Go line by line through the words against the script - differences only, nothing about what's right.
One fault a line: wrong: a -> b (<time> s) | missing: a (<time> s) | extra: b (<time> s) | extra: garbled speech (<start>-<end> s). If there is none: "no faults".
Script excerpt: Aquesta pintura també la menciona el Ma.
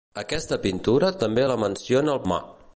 no faults